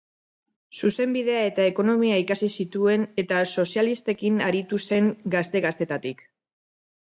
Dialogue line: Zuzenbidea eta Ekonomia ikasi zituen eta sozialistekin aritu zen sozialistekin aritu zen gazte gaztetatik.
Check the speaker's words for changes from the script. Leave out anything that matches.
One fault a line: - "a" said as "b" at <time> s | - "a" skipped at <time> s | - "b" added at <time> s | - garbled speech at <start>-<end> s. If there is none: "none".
- "sozialistekin aritu zen" skipped at 5.1 s